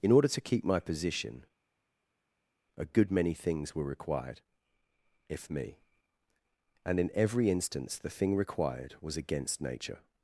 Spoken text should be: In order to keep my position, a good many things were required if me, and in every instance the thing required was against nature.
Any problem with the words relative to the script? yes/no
no